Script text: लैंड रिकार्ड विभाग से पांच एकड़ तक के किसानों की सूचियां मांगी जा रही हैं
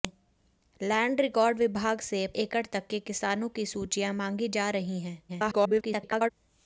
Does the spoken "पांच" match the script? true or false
false